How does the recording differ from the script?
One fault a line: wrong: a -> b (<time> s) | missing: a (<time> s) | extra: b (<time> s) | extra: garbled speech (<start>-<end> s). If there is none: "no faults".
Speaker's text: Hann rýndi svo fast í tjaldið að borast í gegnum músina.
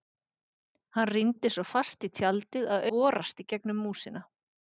no faults